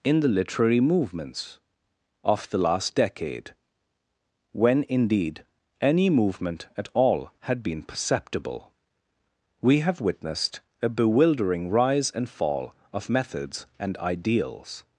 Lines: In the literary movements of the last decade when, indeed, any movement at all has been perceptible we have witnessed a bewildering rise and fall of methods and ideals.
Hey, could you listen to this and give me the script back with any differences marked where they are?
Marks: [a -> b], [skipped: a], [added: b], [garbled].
In the literary movements of the last decade when, indeed, any movement at all [has -> had] been perceptible we have witnessed a bewildering rise and fall of methods and ideals.